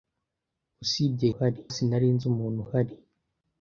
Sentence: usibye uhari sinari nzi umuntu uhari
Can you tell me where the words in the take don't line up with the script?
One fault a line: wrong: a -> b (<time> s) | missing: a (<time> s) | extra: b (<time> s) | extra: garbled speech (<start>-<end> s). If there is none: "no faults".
no faults